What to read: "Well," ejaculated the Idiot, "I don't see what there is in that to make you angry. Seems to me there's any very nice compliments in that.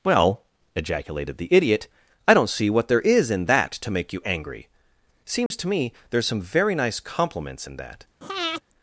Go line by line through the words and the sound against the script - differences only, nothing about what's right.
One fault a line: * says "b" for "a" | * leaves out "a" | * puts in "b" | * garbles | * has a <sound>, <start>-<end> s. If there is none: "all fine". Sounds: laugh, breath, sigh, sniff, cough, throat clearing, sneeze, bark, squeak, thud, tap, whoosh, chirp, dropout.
* has a dropout, 5.5-5.5 s
* says "some" for "any"
* has a breath, 8.2-8.6 s